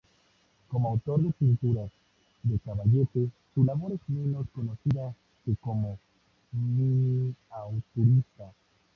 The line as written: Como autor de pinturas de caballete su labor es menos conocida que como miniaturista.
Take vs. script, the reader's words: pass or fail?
pass